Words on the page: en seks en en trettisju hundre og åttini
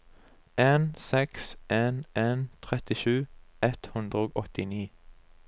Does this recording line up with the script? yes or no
no